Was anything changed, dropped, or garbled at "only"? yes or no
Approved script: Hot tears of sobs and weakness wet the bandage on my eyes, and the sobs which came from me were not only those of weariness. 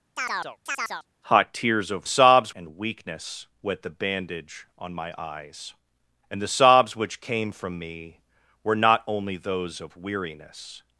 no